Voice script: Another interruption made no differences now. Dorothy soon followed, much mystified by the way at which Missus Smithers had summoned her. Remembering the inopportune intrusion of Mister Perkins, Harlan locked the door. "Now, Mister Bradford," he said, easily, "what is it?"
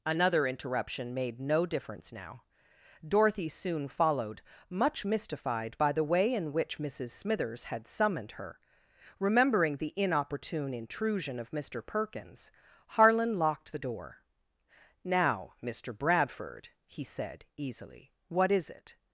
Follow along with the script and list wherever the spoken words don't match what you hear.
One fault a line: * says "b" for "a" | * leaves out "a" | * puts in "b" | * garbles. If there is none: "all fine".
* says "difference" for "differences"
* says "in" for "at"